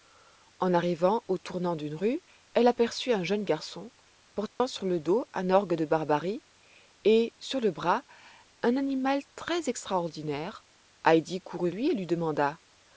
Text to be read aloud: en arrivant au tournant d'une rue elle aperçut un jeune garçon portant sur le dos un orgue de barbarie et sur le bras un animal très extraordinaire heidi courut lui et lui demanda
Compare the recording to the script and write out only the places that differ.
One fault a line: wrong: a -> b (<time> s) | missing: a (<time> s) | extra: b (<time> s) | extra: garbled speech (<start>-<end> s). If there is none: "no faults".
no faults